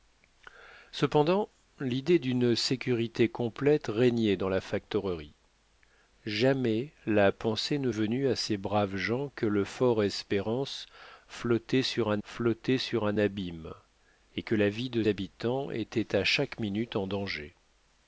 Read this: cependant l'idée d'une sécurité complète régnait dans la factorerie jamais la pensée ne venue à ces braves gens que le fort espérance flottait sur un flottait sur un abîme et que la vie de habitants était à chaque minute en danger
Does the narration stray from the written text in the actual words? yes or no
no